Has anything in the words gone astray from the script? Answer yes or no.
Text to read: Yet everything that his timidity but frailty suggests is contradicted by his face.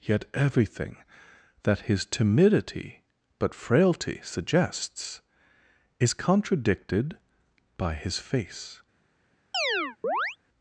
no